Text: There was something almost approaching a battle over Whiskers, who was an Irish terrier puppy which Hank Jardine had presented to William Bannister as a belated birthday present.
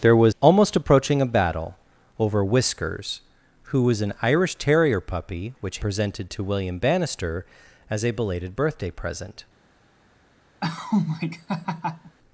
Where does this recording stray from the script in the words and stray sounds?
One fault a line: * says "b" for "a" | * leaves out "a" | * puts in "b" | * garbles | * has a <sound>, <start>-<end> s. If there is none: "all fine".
* leaves out "something"
* leaves out "Hank Jardine had"
* has a laugh, 10.6-12.2 s